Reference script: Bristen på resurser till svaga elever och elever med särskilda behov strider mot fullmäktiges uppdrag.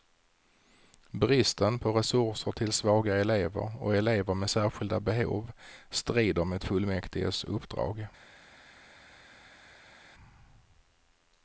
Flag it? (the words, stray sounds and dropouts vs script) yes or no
no